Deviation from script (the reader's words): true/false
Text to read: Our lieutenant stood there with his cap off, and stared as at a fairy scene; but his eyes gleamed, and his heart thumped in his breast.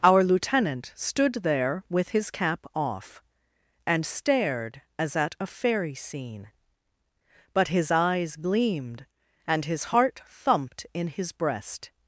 false